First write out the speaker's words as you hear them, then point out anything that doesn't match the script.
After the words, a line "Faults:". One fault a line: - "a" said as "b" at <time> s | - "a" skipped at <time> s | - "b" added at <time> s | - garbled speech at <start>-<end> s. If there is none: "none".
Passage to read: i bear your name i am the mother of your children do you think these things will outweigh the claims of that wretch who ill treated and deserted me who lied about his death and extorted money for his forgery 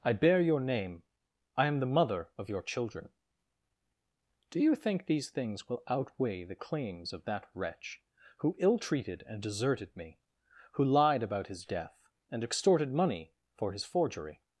i bear your name i am the mother of your children do you think these things will outweigh the claims of that wretch who ill treated and deserted me who lied about his death and extorted money for his forgery
Faults:
none